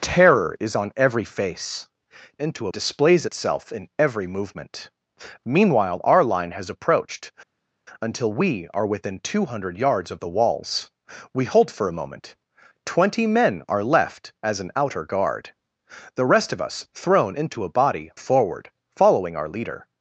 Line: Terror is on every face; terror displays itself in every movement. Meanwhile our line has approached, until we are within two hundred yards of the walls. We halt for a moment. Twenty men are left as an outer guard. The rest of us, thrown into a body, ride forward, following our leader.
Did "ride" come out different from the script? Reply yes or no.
yes